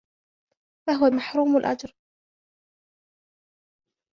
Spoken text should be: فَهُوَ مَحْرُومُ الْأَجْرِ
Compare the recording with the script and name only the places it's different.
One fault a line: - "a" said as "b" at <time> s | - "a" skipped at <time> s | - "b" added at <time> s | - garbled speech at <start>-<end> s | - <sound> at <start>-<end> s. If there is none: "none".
none